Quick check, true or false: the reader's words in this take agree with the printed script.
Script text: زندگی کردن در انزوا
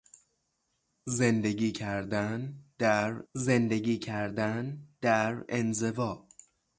false